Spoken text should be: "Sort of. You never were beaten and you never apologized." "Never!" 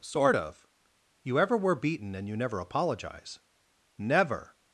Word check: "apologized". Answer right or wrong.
wrong